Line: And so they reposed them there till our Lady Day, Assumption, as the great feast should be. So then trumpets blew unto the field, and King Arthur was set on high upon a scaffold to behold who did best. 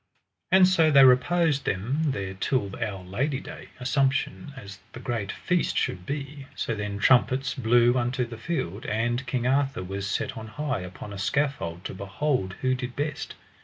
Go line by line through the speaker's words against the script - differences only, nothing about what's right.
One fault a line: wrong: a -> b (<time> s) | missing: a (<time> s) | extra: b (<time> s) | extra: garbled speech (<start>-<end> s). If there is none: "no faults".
no faults